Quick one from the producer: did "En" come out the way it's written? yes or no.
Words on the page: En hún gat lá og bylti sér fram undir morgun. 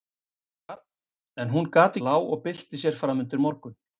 yes